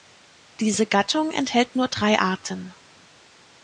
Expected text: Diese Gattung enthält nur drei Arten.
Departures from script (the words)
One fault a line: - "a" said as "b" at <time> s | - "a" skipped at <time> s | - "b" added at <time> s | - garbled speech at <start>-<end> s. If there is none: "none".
none